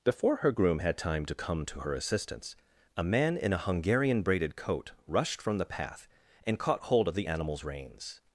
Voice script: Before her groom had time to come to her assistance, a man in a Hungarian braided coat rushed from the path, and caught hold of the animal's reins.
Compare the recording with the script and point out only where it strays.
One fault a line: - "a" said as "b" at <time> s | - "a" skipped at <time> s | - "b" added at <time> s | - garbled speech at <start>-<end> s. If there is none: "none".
none